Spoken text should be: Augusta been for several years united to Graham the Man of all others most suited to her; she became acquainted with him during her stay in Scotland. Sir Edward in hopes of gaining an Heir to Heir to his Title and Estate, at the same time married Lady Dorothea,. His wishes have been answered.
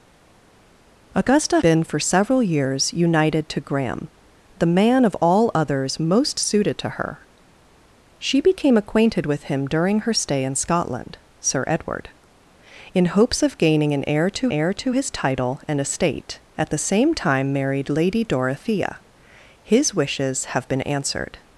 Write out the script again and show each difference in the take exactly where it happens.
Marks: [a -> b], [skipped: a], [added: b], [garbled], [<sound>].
Augusta been for several years united to Graham the Man of all others most suited to her; she became acquainted with him during her stay in Scotland. Sir Edward in hopes of gaining an Heir to Heir to his Title and Estate, at the same time married Lady Dorothea,. His wishes have been answered.